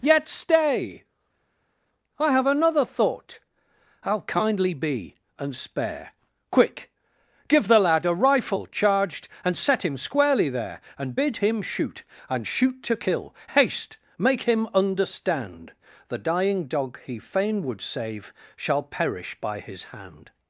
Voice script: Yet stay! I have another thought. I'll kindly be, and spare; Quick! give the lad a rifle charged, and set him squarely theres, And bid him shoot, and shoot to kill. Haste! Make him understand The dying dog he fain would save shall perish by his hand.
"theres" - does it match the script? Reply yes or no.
no